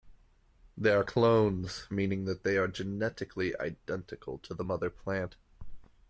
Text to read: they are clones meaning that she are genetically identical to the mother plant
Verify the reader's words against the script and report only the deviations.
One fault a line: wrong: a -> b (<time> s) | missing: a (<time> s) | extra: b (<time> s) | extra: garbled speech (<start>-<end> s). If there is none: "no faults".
wrong: she -> they (2.4 s)